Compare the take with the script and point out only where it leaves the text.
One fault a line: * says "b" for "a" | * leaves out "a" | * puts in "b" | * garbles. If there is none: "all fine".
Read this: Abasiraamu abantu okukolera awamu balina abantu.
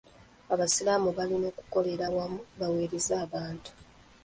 * says "balina" for "abantu"
* says "baweereze" for "balina"